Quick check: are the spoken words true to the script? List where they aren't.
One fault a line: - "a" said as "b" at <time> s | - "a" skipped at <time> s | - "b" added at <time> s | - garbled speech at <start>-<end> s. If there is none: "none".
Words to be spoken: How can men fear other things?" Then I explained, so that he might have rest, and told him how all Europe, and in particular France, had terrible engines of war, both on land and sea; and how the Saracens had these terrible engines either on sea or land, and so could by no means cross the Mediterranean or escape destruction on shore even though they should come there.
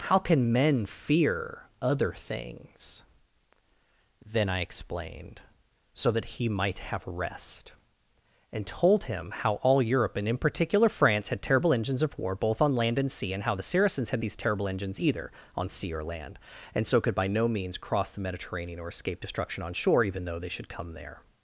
none